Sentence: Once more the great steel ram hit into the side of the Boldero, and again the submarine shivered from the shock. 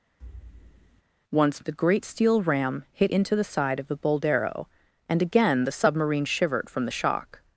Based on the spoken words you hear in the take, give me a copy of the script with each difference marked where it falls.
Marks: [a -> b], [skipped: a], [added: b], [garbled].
Once [skipped: more] the great steel ram hit into the side of the Boldero, and again the submarine shivered from the shock.